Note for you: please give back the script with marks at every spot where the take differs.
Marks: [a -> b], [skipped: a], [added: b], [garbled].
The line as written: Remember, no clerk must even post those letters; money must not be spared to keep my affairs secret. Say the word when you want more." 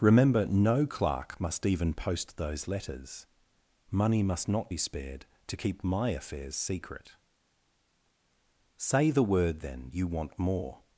Remember, no clerk must even post those letters; money must not be spared to keep my affairs secret. Say the word [when -> then] you want more."